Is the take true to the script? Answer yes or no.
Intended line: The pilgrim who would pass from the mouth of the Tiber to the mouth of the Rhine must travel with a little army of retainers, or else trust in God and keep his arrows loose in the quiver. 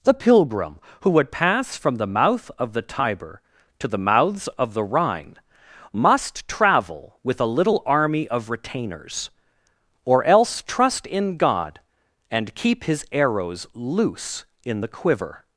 no